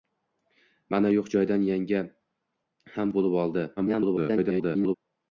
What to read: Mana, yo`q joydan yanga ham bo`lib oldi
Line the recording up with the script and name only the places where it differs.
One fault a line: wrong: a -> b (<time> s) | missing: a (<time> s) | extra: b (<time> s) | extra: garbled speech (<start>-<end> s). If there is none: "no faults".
extra: garbled speech (3.8-5.0 s)